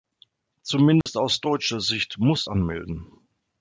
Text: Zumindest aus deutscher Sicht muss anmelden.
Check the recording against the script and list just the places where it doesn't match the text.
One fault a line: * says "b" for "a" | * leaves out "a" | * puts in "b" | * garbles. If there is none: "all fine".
all fine